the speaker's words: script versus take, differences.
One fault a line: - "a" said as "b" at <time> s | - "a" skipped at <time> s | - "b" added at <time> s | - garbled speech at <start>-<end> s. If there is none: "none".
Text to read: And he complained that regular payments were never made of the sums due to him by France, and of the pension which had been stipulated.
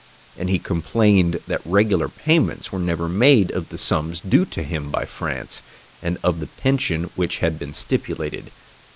none